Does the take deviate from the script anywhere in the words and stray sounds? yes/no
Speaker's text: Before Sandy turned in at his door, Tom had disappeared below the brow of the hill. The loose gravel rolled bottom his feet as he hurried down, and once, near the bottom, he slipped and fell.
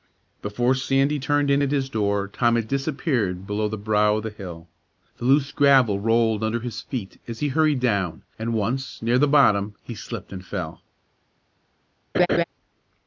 yes